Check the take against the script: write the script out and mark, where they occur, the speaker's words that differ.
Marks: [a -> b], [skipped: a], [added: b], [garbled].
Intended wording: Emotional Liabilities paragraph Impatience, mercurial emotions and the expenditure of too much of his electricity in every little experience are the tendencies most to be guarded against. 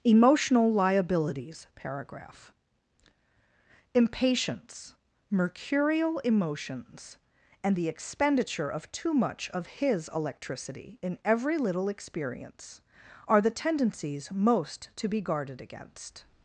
Emotional Liabilities paragraph Impatience, mercurial emotions and the expenditure of too much of his electricity in every little experience are the tendencies most to be guarded against.